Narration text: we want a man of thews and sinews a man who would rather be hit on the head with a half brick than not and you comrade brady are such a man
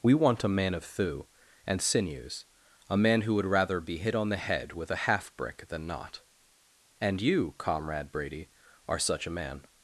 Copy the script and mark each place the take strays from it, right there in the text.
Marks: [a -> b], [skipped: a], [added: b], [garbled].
we want a man of [thews -> thew] and sinews a man who would rather be hit on the head with a half brick than not and you comrade brady are such a man